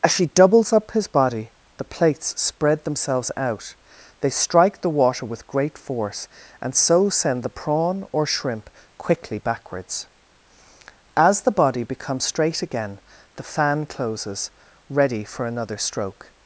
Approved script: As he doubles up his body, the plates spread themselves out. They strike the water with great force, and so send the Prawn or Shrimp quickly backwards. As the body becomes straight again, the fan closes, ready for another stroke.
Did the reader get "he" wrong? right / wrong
wrong